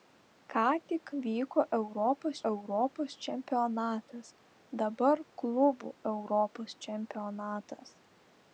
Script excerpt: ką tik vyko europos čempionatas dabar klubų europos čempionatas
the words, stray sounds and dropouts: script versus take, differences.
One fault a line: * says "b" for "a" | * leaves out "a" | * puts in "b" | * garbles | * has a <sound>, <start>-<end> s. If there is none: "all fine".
* puts in "europos"